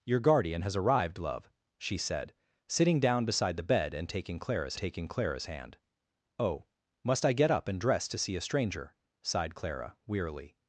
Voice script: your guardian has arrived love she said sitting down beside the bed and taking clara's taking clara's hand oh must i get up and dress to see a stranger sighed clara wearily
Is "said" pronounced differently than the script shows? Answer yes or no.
no